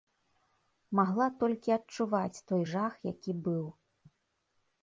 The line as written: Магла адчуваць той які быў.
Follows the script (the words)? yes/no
no